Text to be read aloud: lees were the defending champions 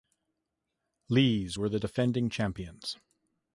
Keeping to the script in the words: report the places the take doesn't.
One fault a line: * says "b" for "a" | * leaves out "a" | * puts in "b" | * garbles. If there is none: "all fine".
all fine